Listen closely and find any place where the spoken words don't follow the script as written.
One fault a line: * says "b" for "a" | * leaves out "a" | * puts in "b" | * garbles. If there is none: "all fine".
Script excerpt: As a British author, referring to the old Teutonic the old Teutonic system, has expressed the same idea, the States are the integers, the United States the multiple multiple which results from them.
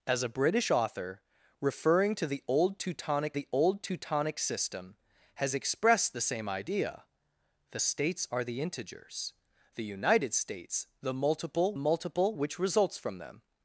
all fine